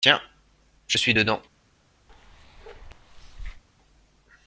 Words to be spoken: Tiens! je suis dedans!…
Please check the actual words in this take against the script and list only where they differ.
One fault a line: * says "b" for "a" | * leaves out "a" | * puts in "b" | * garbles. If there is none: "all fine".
all fine